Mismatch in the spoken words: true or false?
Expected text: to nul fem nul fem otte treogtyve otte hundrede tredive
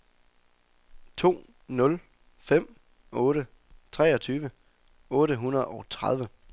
true